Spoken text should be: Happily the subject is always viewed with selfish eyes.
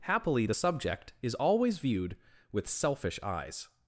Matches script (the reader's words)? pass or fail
pass